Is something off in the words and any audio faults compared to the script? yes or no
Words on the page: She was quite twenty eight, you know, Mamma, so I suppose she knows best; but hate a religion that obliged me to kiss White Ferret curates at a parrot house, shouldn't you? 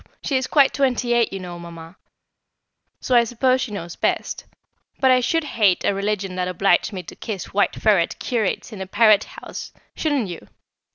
yes